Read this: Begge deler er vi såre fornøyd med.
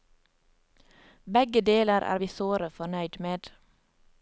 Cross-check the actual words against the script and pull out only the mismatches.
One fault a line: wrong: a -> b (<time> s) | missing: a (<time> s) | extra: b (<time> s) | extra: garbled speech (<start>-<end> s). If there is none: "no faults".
no faults